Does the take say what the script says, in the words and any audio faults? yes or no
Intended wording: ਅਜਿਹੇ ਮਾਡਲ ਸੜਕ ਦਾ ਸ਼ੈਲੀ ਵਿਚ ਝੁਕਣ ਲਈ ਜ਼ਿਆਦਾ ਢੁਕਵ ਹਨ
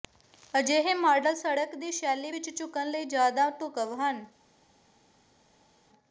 no